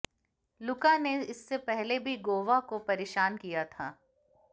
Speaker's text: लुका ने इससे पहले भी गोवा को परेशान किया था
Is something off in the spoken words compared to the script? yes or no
no